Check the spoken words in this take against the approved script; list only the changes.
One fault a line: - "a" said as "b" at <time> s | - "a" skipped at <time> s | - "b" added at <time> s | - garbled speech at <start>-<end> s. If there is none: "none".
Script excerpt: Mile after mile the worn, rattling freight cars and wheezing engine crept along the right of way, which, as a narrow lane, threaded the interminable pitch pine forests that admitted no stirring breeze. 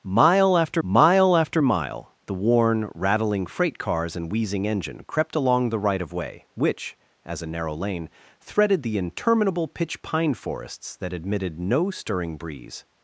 - "after mile" added at 1.4 s